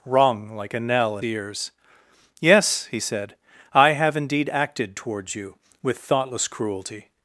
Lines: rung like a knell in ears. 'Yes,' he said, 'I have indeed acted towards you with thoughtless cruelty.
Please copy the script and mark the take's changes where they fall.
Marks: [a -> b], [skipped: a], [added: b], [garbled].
rung like a knell in ears. 'Yes,' he said, 'I have indeed acted towards you with thoughtless cruelty.